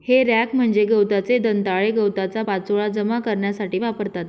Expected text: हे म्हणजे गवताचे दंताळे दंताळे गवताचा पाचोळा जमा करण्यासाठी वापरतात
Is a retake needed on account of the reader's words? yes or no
yes